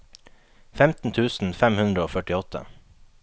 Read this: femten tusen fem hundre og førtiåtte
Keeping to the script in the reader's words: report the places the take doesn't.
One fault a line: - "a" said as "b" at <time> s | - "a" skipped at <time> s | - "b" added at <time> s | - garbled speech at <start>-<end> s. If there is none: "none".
none